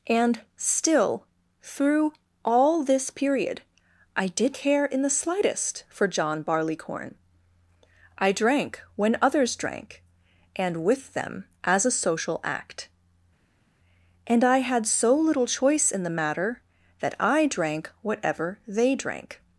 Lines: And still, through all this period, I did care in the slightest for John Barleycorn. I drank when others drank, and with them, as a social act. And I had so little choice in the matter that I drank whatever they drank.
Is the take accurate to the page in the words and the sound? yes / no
yes